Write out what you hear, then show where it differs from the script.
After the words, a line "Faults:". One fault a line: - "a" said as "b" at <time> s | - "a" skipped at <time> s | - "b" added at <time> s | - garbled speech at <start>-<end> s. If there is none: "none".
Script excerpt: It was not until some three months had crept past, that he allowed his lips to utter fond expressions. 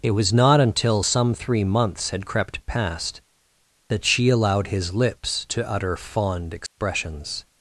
It was not until some three months had crept past, that she allowed his lips to utter fond expressions.
Faults:
- "he" said as "she" at 4.0 s